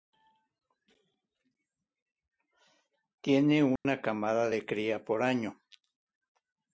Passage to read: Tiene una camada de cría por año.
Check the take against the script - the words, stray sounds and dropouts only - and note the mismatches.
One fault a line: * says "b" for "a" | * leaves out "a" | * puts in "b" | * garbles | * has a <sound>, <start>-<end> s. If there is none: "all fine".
* has a dropout, 3.8-3.8 s